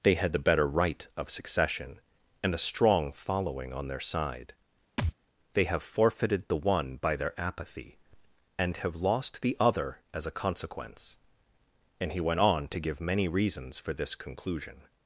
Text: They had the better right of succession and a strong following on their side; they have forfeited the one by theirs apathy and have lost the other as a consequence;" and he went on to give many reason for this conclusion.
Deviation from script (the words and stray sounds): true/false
true